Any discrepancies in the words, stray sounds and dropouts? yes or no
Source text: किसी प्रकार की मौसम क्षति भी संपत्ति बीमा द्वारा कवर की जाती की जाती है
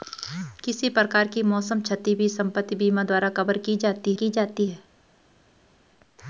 no